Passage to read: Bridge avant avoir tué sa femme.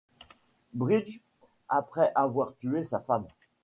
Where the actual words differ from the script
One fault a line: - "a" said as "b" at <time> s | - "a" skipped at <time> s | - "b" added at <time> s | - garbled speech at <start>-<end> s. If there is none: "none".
- "avant" said as "après" at 1.7 s